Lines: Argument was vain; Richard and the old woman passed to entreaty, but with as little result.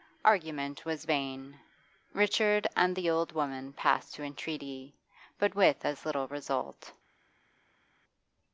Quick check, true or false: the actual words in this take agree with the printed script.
true